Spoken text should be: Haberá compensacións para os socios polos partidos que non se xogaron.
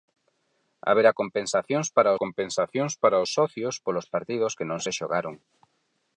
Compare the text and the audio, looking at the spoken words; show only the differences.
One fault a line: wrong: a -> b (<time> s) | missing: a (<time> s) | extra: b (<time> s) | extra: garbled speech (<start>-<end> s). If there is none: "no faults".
extra: compensacións para (2.2 s)